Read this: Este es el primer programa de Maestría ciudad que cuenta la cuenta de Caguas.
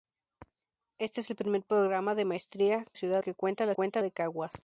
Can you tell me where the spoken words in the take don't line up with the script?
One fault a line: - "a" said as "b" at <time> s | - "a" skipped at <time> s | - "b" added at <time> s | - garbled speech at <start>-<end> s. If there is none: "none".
none